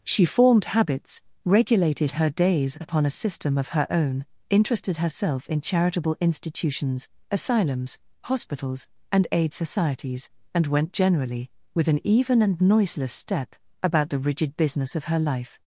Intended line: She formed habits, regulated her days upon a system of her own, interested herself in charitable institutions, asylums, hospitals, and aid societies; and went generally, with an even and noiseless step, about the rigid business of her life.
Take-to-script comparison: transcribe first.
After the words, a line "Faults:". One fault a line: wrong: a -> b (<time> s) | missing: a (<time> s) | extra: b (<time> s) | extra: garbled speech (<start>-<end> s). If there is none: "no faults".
She formed habits, regulated her days upon a system of her own, interested herself in charitable institutions, asylums, hospitals, and aid societies; and went generally, with an even and noiseless step, about the rigid business of her life.
Faults:
no faults